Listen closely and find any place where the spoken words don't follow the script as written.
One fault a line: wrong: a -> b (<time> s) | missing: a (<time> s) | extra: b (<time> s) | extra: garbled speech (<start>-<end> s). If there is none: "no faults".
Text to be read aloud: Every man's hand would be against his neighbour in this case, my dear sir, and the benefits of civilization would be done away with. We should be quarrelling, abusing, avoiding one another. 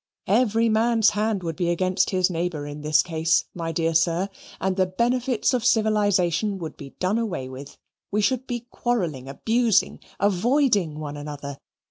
no faults